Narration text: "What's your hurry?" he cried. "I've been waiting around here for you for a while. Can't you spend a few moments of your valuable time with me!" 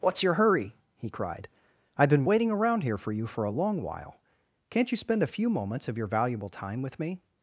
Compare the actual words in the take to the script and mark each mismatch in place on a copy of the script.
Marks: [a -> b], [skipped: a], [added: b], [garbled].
"What's your hurry?" he cried. "I've been waiting around here for you for a [added: long] while. Can't you spend a few moments of your valuable time with me!"